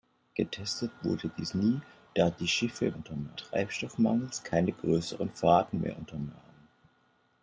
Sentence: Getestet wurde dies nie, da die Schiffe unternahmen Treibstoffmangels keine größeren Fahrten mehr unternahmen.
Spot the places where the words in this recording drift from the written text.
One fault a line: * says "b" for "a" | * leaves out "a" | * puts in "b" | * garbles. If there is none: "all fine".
all fine